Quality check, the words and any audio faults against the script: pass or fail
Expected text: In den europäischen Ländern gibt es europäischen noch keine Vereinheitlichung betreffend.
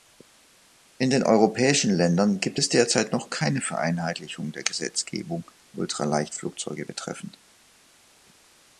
fail